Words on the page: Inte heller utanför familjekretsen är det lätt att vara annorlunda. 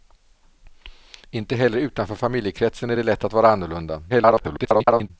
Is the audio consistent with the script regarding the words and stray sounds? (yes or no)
no